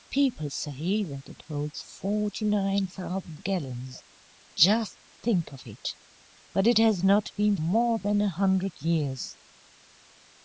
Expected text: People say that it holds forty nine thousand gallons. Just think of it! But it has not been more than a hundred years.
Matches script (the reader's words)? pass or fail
pass